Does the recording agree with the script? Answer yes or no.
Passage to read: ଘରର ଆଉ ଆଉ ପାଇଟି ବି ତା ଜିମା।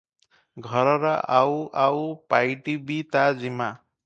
yes